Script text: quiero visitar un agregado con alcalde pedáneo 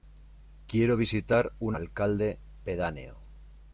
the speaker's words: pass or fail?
fail